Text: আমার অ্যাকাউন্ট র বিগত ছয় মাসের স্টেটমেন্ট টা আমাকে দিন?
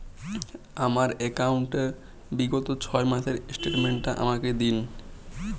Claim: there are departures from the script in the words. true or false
false